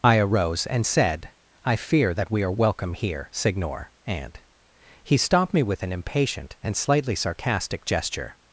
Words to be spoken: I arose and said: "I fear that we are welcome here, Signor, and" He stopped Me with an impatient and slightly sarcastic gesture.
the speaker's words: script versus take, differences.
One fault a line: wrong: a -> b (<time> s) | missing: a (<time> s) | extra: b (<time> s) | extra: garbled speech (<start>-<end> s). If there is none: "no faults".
no faults